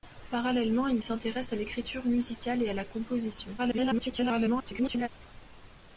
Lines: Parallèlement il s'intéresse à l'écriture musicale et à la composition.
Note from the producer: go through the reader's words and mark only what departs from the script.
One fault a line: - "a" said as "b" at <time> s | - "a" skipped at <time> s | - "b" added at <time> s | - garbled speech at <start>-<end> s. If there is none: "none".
- garbled speech at 3.6-5.1 s